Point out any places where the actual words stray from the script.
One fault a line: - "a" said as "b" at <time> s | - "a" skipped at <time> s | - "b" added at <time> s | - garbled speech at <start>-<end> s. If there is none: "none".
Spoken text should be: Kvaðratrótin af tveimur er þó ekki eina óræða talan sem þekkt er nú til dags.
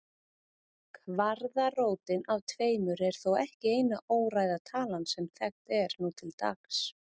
none